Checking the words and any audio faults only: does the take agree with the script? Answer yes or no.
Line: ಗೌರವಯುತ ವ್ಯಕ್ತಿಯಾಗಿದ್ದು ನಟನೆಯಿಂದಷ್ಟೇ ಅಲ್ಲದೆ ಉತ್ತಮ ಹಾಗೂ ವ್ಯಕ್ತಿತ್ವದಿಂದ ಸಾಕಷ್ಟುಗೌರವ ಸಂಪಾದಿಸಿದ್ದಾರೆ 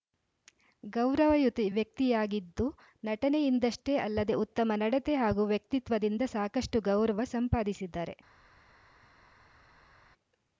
no